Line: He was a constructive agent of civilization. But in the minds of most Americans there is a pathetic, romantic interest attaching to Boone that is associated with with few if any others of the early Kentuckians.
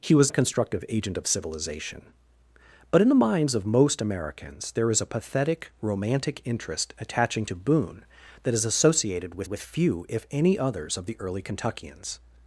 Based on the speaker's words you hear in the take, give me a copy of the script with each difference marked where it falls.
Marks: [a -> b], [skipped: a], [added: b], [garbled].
He was a constructive agent of civilization. But in the minds of most Americans there is a pathetic, romantic interest attaching to Boone that is associated with with few if any others of the early Kentuckians.